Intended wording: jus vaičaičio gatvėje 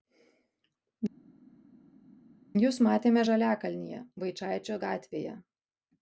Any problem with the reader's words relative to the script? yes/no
yes